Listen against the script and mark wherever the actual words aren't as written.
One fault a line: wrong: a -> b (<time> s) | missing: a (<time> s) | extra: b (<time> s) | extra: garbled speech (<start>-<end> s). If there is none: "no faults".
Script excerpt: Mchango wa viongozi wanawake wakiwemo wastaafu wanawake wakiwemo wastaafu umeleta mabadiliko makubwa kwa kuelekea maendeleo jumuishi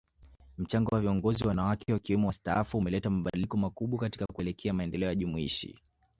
missing: wanawake wakiwemo wastaafu (2.8 s)
wrong: kwa -> katika (4.0 s)